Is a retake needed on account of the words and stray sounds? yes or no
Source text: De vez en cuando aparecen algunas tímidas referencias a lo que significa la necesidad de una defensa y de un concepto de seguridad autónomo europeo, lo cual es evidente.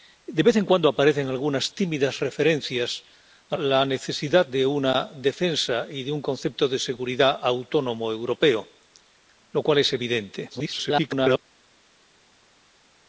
yes